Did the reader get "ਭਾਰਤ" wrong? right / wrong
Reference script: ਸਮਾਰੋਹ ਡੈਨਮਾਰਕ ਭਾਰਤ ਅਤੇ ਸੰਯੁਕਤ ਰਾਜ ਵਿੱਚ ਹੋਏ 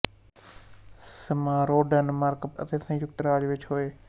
wrong